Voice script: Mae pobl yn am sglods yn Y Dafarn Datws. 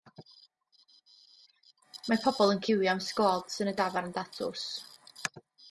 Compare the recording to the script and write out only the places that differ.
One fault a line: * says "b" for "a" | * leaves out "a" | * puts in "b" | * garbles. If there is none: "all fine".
* puts in "ciwio"